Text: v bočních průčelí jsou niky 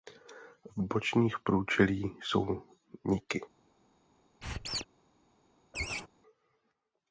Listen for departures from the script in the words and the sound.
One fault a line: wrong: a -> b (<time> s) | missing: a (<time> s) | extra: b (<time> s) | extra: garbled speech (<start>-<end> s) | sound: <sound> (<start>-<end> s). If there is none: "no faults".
sound: squeak (4.4-4.9 s)
sound: laugh (5.7-6.1 s)